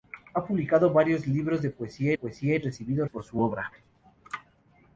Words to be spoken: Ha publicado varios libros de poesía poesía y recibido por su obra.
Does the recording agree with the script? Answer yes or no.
yes